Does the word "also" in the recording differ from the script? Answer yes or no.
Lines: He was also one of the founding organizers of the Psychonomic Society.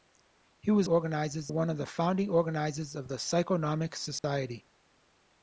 yes